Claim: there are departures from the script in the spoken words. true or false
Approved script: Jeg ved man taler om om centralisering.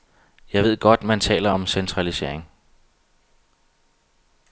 true